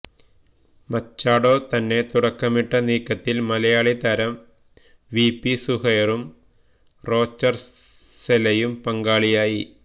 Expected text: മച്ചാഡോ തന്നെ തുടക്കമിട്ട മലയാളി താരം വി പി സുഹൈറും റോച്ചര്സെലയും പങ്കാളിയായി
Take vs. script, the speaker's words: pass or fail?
fail